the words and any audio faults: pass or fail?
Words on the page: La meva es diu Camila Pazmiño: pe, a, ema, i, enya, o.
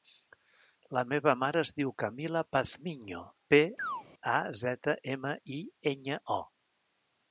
fail